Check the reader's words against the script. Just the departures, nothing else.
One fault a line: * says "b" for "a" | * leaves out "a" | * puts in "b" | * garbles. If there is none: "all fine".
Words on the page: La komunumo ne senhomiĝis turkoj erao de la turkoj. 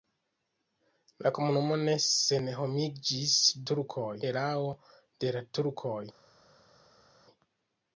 all fine